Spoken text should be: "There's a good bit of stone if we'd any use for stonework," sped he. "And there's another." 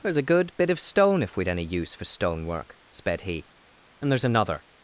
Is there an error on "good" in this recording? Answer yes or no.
no